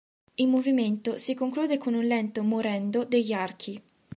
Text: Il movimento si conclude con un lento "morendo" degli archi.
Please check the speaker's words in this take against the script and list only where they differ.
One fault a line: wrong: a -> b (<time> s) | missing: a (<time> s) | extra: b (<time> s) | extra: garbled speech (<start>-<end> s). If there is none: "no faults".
no faults